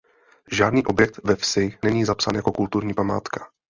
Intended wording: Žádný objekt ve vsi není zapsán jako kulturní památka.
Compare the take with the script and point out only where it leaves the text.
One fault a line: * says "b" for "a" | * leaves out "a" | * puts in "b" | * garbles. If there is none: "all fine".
all fine